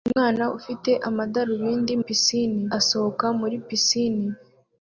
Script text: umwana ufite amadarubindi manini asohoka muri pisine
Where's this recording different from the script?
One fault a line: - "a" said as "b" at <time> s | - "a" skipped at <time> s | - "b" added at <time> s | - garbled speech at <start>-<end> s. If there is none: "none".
- "manini" said as "pisine" at 2.0 s